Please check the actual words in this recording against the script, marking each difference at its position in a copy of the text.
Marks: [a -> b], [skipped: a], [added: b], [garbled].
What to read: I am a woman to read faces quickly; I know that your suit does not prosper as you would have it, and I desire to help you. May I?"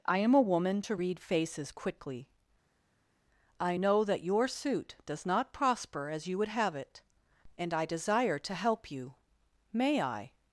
I am a woman to read faces quickly; I know that your suit does not prosper as you would have it, and I desire to help you. May I?"